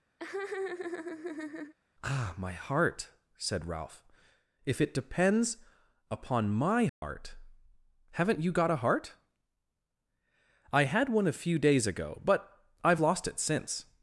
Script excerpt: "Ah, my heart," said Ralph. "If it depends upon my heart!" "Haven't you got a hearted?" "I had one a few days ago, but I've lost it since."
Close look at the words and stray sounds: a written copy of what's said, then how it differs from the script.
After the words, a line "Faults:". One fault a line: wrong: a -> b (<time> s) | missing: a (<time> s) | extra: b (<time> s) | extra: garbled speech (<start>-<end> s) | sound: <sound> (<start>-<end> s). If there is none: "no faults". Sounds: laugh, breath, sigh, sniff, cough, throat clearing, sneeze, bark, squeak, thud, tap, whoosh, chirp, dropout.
"Ah, my heart," said Ralph. "If it depends upon my heart!" "Haven't you got a heart?" "I had one a few days ago, but I've lost it since."
Faults:
sound: laugh (0.2-1.7 s)
sound: dropout (6.9-7.0 s)
wrong: hearted -> heart (8.8 s)